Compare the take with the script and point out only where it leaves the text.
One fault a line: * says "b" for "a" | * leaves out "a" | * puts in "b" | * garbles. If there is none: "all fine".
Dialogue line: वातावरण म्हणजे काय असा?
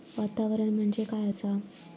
all fine